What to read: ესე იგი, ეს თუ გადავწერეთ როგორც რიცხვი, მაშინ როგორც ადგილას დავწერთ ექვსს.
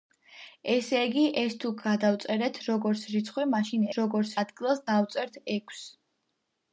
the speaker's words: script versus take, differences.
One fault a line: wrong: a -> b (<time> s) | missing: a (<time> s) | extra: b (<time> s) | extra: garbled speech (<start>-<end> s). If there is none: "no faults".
no faults